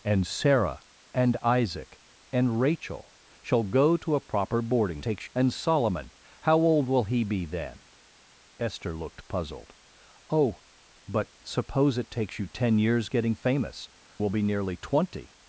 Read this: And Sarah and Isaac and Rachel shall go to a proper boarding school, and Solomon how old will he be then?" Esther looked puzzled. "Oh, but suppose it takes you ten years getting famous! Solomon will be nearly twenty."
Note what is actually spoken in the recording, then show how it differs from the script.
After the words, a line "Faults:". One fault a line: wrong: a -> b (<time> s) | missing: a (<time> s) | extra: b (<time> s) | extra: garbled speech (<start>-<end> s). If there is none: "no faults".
And Sarah and Isaac and Rachel shall go to a proper boarding takes, and Solomon how old will he be then?" Esther looked puzzled. "Oh, but suppose it takes you ten years getting famous! Will be nearly twenty."
Faults:
wrong: school -> takes (5.0 s)
missing: Solomon (13.9 s)